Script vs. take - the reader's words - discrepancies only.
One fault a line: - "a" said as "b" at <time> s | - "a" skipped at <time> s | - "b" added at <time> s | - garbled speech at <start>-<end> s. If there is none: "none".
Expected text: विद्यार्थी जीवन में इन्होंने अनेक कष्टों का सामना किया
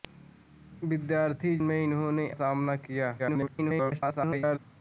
- "जीवन" skipped at 1.6 s
- "अनेक कष्टों का" skipped at 2.3 s
- garbled speech at 3.2-4.6 s